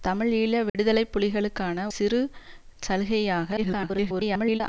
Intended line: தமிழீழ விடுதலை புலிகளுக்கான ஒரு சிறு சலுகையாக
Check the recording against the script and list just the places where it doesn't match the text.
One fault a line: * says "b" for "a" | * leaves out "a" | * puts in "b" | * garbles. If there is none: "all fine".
* leaves out "ஒரு"
* garbles